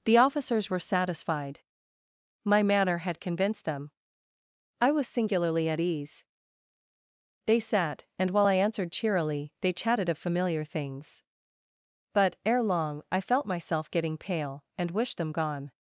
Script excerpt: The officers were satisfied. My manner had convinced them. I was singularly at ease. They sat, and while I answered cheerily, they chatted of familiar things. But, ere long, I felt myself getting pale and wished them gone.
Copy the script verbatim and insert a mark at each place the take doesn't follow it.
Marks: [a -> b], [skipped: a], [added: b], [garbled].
The officers were satisfied. My manner had convinced them. I was singularly at ease. They sat, and while I answered cheerily, they chatted of familiar things. But, ere long, I felt myself getting pale and wished them gone.